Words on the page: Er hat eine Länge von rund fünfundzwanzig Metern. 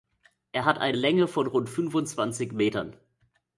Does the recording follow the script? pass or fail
pass